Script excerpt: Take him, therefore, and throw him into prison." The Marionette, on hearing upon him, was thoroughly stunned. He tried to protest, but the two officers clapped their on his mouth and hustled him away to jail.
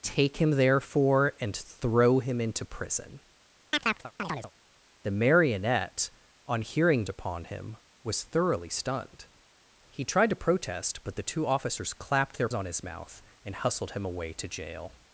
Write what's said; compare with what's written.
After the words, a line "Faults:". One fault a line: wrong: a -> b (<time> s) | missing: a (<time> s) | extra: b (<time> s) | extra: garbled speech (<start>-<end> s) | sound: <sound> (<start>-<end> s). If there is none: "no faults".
Take him, therefore, and throw him into prison." The Marionette, on hearing upon him, was thoroughly stunned. He tried to protest, but the two officers clapped their on his mouth and hustled him away to jail.
Faults:
sound: chirp (3.7-4.5 s)